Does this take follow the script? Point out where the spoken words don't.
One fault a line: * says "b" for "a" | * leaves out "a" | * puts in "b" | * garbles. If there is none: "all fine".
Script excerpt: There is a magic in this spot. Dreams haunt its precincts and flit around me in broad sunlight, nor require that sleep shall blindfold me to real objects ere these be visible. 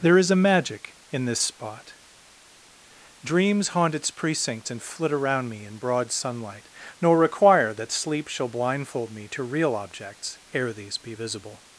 all fine